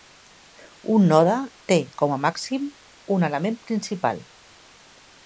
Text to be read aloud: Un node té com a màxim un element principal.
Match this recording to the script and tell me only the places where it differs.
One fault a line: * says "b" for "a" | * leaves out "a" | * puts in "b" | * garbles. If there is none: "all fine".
all fine